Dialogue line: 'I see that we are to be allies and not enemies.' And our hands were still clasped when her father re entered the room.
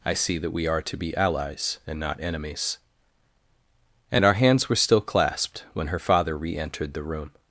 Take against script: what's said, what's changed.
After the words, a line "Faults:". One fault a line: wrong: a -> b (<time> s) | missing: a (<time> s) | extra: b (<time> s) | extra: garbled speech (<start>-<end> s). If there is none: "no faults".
'I see that we are to be allies and not enemies.' And our hands were still clasped when her father re entered the room.
Faults:
no faults